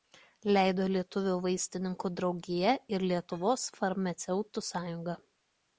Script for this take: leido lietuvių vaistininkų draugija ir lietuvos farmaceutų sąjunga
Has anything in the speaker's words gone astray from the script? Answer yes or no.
no